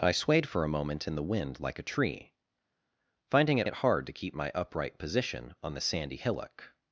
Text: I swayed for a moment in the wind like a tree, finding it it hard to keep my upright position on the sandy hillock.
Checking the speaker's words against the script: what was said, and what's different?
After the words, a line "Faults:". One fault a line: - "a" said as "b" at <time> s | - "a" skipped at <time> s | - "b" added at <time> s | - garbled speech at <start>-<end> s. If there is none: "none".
I swayed for a moment in the wind like a tree, finding it it hard to keep my upright position on the sandy hillock.
Faults:
none